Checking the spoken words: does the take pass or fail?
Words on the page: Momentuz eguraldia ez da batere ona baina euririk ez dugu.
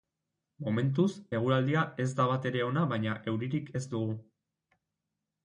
pass